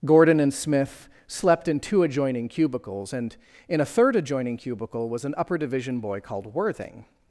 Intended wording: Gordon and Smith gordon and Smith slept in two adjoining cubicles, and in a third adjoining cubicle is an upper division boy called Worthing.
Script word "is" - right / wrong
wrong